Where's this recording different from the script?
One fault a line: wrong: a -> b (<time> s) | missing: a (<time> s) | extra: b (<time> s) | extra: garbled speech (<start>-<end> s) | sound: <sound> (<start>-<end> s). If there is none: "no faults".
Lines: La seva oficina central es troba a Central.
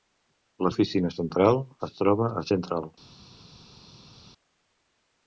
missing: seva (0.7 s)